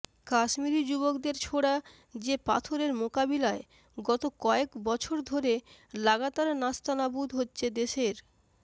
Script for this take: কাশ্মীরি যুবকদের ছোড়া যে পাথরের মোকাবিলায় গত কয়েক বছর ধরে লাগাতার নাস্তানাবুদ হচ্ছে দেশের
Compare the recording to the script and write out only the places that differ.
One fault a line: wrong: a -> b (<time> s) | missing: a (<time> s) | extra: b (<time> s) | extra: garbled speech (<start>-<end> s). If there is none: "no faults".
no faults